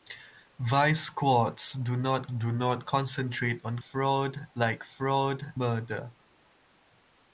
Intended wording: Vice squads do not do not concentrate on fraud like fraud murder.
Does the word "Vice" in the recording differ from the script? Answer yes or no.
no